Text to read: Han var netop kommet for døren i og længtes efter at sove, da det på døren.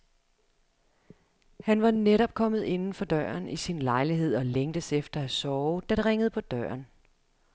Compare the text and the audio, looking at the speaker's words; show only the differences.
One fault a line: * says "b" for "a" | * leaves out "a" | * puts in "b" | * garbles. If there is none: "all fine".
* puts in "inden"
* puts in "sin lejlighed"
* puts in "ringede"